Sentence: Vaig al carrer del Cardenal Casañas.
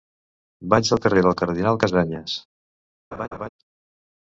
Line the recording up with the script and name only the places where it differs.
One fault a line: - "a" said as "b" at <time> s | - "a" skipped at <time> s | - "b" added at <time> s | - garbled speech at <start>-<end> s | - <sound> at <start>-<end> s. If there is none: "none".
- laugh at 3.1-3.5 s